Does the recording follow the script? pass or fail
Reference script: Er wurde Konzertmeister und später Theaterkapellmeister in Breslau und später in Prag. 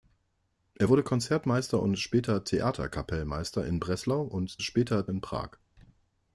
pass